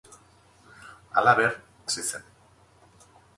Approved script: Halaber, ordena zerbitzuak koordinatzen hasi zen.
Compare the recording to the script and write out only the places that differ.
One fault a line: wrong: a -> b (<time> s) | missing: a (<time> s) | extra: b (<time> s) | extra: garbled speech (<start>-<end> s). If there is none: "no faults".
missing: ordena zerbitzuak koordinatzen (1.5 s)